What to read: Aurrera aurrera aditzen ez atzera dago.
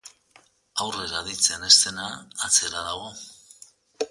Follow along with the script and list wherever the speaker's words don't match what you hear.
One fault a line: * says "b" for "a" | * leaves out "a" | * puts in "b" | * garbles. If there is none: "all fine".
* leaves out "aurrera"
* puts in "dena"